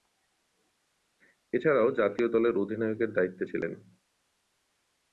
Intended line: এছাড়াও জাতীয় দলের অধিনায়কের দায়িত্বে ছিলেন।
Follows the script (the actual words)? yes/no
yes